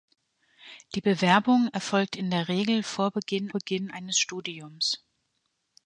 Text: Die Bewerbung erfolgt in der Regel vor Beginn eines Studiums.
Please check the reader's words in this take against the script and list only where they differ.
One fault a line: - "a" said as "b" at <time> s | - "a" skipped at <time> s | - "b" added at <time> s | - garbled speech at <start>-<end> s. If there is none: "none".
- "Beginn" added at 3.5 s